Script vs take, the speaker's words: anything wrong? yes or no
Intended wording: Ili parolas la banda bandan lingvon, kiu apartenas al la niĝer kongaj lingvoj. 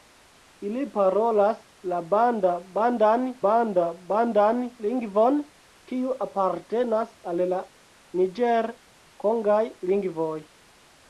yes